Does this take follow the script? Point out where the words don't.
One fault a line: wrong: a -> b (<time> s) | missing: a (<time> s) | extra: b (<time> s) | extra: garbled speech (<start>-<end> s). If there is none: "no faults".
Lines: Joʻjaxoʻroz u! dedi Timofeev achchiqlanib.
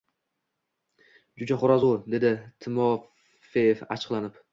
no faults